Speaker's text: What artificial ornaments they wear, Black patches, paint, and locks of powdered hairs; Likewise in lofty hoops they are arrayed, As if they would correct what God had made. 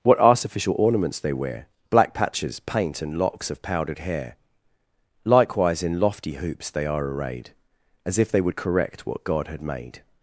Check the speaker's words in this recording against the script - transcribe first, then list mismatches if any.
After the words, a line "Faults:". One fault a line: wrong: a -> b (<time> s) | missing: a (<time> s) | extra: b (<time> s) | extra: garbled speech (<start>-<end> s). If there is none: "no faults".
What artificial ornaments they wear, Black patches, paint, and locks of powdered hair; Likewise in lofty hoops they are arrayed, As if they would correct what God had made.
Faults:
wrong: hairs -> hair (4.0 s)